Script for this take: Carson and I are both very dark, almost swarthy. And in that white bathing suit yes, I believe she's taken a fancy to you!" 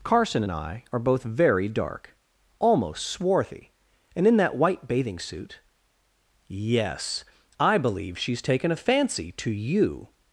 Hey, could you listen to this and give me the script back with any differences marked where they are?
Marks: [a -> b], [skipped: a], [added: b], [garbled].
Carson and I are both very dark, almost swarthy. And in that white bathing suit yes, I believe she's taken a fancy to you!"